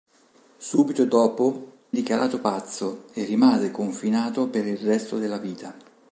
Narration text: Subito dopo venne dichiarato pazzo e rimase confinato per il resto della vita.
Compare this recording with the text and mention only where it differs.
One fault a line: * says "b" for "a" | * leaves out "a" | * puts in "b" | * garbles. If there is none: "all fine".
* leaves out "venne"